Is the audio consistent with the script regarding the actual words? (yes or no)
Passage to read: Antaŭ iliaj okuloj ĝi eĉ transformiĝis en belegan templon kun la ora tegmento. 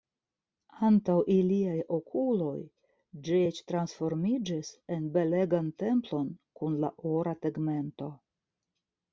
yes